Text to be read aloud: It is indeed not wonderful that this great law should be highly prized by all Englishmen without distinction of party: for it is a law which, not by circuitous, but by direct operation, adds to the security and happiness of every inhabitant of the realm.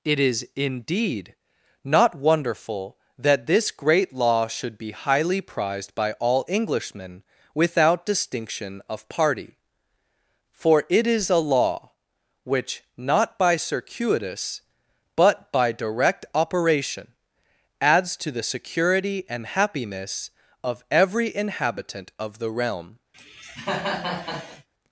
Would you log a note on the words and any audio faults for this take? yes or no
yes